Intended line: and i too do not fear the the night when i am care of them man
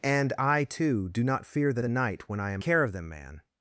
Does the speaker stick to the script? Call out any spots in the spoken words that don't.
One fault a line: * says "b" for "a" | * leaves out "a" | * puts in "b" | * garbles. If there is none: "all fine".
all fine